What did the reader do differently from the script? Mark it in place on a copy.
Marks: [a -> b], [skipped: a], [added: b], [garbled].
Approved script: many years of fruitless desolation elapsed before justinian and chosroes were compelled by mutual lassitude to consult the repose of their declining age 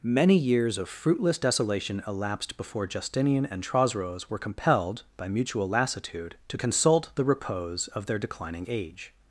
many years of fruitless desolation elapsed before justinian and chosroes were compelled by mutual lassitude to consult the repose of their declining age